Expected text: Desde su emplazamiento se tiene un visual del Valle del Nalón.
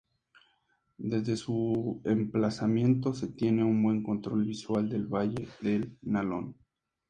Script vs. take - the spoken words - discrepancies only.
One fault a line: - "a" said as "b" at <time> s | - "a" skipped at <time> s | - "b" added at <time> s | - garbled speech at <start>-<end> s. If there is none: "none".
- "buen control" added at 3.8 s